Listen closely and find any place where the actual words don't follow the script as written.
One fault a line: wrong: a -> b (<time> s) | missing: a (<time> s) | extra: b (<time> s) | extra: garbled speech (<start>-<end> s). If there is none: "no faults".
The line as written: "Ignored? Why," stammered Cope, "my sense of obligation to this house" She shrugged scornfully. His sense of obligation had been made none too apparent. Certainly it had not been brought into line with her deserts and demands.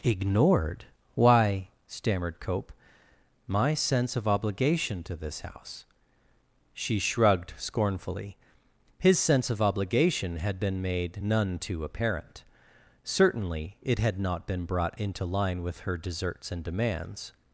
no faults